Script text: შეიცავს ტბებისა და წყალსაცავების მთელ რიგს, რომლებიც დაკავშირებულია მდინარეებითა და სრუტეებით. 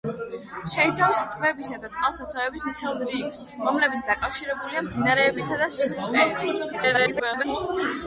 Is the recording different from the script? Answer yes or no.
yes